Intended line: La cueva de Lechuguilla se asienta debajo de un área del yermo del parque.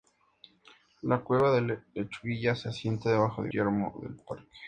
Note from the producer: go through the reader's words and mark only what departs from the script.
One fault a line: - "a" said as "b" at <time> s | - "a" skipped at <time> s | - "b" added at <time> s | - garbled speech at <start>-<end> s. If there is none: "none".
- "un área del" skipped at 3.5 s